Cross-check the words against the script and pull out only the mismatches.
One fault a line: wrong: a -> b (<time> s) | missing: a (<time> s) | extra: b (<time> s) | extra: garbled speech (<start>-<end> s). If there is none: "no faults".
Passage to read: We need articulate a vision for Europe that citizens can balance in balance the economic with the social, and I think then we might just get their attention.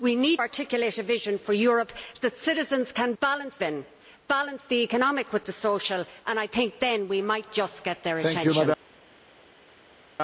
no faults